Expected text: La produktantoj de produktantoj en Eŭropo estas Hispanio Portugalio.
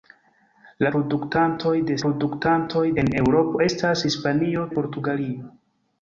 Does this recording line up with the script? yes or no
yes